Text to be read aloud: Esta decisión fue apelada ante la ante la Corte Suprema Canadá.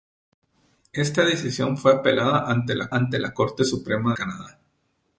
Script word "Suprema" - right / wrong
right